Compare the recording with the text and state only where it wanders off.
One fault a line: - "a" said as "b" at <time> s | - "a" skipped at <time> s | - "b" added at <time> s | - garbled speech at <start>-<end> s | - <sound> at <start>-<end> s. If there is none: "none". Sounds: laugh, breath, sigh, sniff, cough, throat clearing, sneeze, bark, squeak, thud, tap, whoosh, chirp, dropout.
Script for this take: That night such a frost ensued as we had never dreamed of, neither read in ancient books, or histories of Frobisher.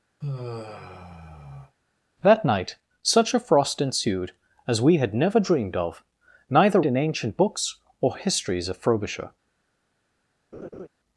- sigh at 0.2-1.8 s
- "read" skipped at 6.8 s
- laugh at 10.5-10.9 s